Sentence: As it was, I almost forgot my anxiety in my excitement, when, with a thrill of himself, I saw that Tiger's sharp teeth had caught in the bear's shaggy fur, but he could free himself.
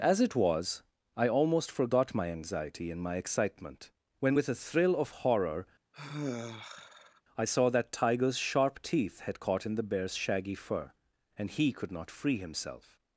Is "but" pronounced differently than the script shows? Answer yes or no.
yes